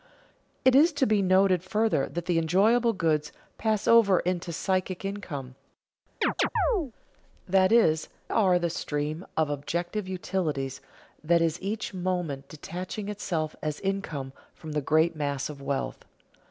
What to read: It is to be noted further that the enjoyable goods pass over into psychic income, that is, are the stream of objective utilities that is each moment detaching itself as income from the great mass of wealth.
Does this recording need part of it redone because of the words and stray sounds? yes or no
yes